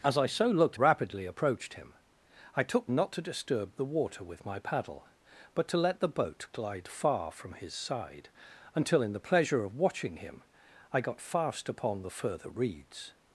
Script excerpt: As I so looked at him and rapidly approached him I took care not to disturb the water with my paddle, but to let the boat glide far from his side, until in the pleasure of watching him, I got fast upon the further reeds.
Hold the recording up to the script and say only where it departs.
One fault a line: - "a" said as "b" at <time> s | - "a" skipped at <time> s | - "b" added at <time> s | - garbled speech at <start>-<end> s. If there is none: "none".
- "at him and" skipped at 0.8 s
- "care" skipped at 2.9 s